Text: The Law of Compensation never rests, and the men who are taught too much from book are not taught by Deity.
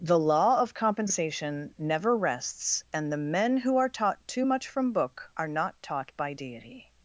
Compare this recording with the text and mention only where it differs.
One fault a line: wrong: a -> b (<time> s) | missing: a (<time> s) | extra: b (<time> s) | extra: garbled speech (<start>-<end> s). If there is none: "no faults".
no faults